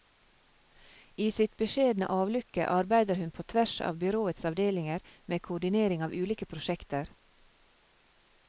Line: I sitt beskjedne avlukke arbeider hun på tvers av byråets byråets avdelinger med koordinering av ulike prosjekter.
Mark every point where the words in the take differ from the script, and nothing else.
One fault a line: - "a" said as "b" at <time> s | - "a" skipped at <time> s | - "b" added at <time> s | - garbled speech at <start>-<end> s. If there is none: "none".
- "byråets" skipped at 4.5 s